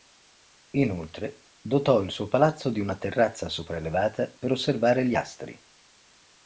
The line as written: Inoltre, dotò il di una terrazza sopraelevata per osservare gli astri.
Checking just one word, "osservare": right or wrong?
right